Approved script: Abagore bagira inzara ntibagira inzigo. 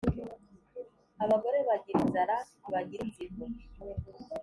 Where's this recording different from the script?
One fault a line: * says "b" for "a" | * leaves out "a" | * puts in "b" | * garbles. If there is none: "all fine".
all fine